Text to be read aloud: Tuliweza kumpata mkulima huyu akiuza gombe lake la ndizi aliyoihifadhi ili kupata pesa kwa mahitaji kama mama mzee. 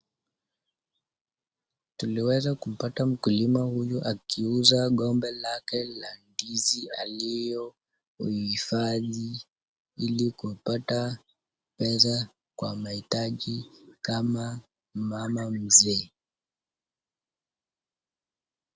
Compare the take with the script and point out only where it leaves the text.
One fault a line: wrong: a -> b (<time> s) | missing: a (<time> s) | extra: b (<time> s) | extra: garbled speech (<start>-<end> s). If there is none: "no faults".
no faults